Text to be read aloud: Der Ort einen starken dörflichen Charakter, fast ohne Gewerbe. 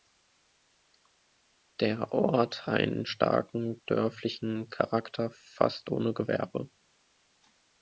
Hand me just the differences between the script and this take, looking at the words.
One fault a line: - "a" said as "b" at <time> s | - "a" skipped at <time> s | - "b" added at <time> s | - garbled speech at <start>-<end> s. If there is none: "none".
none